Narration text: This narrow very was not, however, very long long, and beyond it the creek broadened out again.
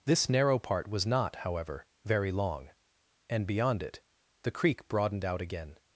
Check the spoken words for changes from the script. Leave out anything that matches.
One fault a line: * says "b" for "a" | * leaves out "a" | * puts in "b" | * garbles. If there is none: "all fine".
* says "part" for "very"
* leaves out "long"